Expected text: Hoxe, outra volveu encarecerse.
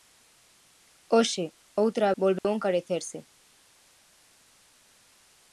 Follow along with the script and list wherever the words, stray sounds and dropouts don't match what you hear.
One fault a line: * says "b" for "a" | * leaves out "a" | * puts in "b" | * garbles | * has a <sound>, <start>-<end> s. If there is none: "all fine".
* has a dropout, 2.4-2.4 s